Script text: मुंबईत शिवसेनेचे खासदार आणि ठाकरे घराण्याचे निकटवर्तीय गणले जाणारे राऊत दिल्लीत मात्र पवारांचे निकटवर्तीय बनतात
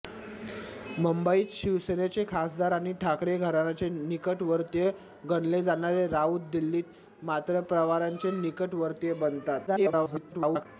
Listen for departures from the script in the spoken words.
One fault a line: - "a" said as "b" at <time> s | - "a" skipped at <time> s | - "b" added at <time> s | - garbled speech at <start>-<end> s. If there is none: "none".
- garbled speech at 9.7-10.7 s